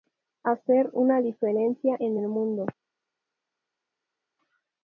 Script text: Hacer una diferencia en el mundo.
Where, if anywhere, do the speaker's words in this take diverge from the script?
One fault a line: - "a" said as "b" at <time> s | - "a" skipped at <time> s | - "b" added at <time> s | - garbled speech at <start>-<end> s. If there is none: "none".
none